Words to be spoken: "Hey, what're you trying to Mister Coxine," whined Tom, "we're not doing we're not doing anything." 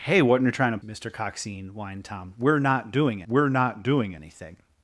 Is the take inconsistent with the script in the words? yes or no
no